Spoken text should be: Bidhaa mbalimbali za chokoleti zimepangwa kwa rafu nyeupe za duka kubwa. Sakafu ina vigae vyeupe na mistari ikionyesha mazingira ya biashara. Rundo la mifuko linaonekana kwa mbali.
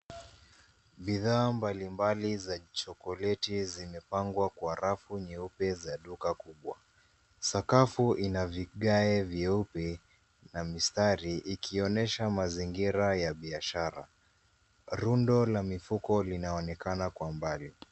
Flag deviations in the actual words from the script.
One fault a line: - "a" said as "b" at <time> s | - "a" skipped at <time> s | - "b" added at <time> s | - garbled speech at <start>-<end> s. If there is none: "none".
none